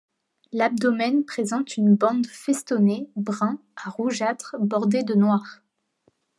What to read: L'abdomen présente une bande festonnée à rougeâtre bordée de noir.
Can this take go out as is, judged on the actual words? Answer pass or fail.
fail